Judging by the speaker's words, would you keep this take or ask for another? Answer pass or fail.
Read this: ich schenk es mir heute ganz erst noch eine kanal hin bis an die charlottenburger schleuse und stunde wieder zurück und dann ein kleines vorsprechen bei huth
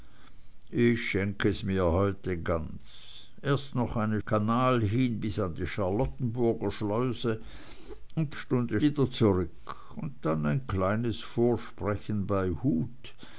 pass